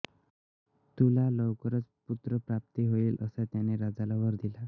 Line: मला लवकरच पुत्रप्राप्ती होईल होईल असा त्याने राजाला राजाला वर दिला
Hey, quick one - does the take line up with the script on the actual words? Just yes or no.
no